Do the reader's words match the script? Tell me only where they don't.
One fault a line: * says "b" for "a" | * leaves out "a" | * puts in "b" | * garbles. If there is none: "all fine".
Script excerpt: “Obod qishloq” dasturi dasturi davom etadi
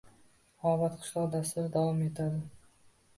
* leaves out "dasturi"